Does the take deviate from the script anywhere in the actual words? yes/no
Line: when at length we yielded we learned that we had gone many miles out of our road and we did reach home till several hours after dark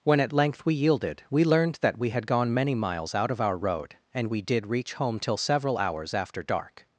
no